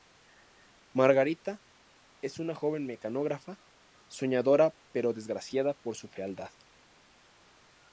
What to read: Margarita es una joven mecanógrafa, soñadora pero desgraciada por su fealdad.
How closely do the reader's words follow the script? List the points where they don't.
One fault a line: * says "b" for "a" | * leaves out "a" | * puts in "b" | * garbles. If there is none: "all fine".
all fine